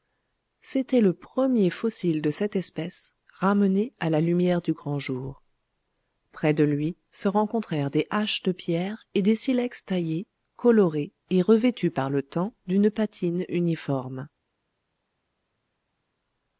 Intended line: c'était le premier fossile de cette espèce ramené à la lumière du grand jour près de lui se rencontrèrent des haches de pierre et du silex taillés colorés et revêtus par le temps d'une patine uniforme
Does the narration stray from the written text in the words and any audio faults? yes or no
yes